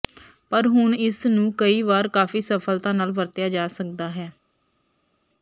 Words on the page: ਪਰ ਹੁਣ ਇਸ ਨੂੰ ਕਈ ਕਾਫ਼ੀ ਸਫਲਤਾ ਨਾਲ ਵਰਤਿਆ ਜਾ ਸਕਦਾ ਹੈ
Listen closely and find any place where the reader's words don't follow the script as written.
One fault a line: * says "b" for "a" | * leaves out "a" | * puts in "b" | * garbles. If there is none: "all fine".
* puts in "ਵਾਰ"